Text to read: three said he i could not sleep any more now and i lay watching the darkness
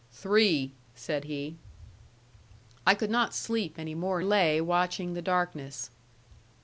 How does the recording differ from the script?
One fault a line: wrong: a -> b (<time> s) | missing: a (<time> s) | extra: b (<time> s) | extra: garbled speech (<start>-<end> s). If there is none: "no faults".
missing: now and i (4.2 s)